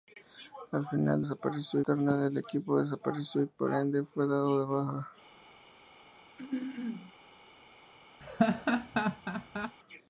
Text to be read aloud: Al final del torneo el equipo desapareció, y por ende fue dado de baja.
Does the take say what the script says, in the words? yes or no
no